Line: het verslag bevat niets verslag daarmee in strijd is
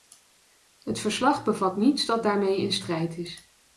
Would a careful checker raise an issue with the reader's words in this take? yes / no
yes